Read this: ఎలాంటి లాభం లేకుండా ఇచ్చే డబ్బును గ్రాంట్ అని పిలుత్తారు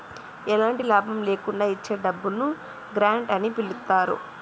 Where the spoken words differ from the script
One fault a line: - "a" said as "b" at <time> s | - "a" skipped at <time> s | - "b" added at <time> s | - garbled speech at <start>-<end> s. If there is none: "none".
none